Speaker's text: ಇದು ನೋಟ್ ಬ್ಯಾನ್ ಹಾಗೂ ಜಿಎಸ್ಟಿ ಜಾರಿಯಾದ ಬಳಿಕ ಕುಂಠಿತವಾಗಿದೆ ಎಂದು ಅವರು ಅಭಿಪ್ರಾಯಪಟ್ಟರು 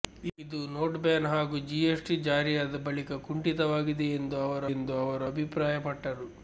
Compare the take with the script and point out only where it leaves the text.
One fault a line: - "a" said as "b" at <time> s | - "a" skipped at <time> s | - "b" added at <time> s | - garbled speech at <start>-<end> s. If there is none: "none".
- "ಎಂದು ಅವರು" added at 4.7 s